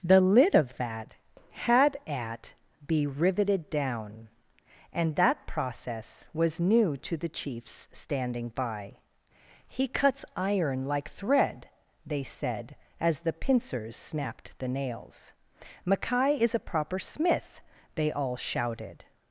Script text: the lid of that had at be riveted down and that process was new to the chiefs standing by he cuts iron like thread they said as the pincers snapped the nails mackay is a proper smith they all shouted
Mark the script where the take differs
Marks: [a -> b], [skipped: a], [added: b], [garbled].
the lid of that had at be riveted down and that process was new to the chiefs standing by he cuts iron like thread they said as the pincers snapped the nails mackay is a proper smith they all shouted